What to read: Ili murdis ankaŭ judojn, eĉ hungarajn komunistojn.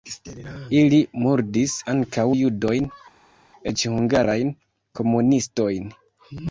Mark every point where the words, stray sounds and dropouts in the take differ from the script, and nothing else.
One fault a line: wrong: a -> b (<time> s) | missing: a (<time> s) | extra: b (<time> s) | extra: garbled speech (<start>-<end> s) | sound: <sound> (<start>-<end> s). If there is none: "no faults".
no faults